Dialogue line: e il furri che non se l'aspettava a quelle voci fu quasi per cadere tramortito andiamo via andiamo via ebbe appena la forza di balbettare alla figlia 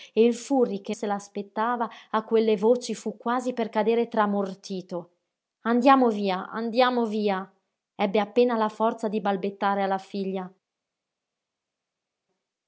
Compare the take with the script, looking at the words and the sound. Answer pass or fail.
fail